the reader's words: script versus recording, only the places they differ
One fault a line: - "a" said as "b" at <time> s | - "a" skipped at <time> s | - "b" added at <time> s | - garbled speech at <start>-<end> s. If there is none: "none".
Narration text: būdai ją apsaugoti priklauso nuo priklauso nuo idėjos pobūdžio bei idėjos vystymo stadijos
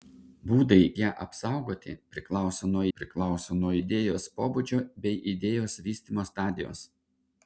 none